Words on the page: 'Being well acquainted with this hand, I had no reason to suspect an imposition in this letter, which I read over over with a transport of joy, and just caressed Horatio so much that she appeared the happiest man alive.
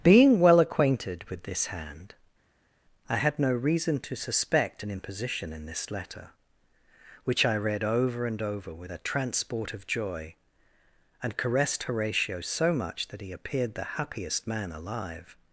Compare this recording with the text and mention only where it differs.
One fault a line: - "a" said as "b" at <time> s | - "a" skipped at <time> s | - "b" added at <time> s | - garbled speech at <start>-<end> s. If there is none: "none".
- "and" added at 8.2 s
- "just" skipped at 11.4 s
- "she" said as "he" at 13.2 s